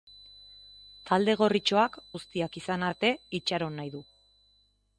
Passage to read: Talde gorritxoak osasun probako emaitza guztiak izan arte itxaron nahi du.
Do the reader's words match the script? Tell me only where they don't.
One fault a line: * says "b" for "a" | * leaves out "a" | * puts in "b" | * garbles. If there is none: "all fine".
* leaves out "osasun probako emaitza"